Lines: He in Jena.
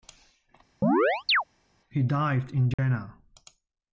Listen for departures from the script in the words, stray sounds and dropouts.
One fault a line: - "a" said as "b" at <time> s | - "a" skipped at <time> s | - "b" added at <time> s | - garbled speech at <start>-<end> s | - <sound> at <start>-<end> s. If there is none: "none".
- chirp at 0.8-1.4 s
- "died" added at 2.0 s
- dropout at 2.7-2.8 s